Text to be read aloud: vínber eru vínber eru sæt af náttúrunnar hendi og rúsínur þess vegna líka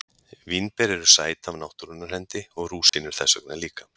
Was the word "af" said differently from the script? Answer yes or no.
no